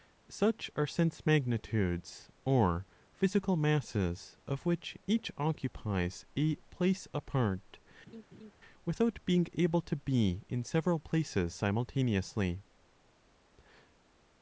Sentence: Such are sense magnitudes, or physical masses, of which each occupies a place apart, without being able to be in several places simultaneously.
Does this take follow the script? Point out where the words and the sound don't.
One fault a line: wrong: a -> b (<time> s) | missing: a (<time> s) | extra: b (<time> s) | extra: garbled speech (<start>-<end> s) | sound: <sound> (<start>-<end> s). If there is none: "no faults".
sound: laugh (8.1-8.5 s)